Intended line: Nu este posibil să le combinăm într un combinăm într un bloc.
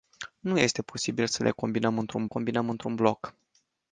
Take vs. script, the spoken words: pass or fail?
pass